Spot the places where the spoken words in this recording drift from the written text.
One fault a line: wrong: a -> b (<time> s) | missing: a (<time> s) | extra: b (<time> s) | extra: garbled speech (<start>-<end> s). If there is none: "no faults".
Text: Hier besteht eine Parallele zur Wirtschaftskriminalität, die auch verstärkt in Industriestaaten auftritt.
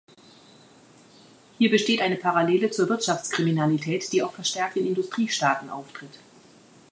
no faults